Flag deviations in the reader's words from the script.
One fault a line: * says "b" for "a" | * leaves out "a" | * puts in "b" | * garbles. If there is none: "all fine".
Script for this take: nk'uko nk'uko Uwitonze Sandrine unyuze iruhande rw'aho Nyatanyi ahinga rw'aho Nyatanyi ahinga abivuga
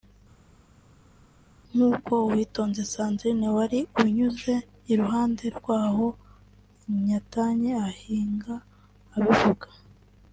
* leaves out "nk'uko"
* puts in "wari"
* leaves out "rw'aho Nyatanyi ahinga"